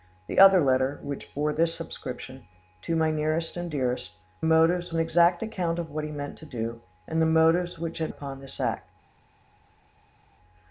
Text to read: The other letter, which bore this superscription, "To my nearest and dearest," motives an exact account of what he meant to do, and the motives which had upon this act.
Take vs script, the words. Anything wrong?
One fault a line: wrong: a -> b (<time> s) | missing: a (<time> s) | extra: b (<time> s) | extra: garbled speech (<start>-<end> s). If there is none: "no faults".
no faults